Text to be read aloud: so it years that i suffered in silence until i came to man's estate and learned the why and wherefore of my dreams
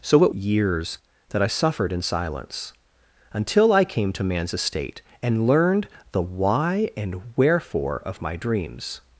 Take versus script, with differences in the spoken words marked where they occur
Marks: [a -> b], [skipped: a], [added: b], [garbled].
so it years that i suffered in silence until i came to man's estate and learned the why and wherefore of my dreams